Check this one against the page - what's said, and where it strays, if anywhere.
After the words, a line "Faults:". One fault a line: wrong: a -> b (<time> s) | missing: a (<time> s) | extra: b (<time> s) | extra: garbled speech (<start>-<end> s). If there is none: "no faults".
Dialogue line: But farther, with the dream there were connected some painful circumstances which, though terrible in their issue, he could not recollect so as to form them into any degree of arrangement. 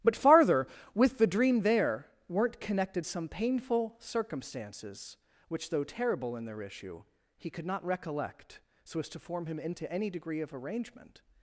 But farther, with the dream there weren't connected some painful circumstances which, though terrible in their issue, he could not recollect so as to form him into any degree of arrangement.
Faults:
wrong: were -> weren't (2.3 s)
wrong: them -> him (9.5 s)